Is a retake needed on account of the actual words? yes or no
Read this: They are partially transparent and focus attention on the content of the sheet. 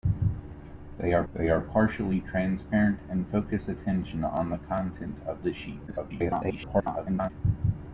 yes